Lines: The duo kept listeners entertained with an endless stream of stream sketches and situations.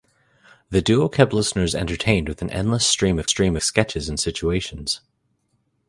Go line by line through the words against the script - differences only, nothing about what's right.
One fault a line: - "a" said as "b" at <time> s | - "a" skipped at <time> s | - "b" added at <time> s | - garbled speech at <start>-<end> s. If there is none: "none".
none